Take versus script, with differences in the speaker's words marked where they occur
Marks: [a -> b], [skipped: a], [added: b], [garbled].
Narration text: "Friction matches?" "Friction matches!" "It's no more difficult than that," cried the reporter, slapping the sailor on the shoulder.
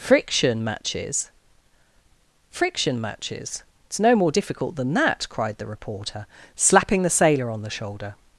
"Friction matches?" "Friction matches!" "It's no more difficult than that," cried the reporter, slapping the sailor on the shoulder.